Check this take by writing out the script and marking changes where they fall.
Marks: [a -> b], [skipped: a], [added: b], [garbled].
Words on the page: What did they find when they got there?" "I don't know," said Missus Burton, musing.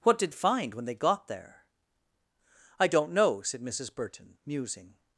What did [skipped: they] find when they got there?" "I don't know," said Missus Burton, musing.